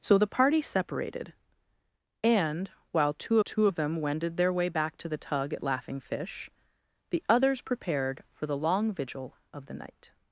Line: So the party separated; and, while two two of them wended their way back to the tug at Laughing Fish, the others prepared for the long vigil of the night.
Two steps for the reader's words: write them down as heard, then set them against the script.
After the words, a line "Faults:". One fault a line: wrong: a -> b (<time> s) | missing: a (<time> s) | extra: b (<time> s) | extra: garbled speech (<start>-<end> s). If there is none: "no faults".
So the party separated; and, while two two of them wended their way back to the tug at Laughing Fish, the others prepared for the long vigil of the night.
Faults:
no faults